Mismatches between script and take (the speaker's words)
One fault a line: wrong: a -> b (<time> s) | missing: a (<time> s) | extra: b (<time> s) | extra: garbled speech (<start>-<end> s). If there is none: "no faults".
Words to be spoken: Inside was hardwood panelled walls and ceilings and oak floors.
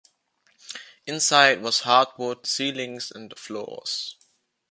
missing: panelled walls and (2.5 s)
missing: oak (3.3 s)